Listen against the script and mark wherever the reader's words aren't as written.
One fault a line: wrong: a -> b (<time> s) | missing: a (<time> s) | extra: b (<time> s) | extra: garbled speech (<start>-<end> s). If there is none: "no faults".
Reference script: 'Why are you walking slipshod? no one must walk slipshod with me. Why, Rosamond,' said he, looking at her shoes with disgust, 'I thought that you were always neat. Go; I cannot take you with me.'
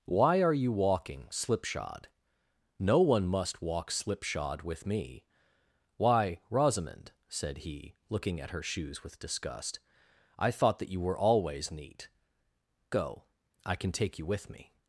wrong: cannot -> can (13.8 s)